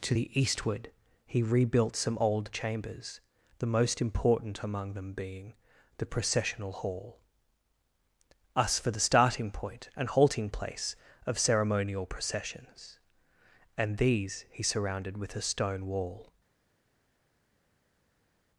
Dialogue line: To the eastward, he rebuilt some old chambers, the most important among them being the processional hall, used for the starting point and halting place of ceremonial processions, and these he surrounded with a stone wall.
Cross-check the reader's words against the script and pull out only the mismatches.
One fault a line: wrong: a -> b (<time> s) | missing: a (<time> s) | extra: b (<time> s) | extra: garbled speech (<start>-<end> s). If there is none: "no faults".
wrong: used -> us (8.5 s)